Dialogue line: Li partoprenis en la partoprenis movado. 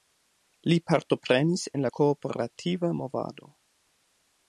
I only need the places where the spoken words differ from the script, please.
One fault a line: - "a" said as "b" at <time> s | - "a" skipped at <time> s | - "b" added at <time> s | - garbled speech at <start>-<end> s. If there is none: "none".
- "partoprenis" said as "kooperativa" at 2.0 s